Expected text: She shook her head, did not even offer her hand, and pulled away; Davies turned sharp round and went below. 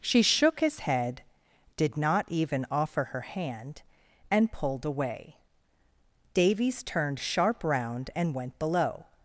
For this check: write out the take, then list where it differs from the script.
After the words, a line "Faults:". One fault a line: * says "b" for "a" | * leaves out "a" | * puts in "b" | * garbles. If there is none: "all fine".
She shook his head, did not even offer her hand, and pulled away; Davies turned sharp round and went below.
Faults:
* says "his" for "her"